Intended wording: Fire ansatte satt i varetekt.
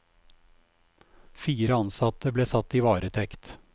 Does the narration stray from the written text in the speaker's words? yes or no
yes